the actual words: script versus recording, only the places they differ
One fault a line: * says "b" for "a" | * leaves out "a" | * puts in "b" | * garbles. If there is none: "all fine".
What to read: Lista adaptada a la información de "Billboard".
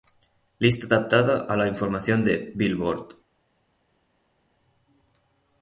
all fine